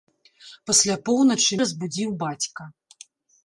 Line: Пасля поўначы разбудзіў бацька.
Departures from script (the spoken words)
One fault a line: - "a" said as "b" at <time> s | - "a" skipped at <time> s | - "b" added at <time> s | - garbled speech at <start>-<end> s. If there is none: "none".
none